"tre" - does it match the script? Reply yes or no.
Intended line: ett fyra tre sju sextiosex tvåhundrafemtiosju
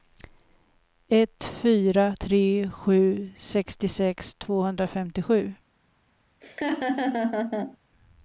yes